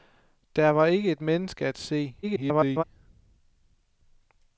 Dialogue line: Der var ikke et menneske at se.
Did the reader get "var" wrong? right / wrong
right